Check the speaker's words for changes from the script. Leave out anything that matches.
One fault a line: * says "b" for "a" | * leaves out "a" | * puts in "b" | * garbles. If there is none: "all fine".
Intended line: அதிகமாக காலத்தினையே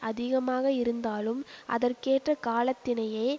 * puts in "இருந்தாலும் அதற்கேற்ற"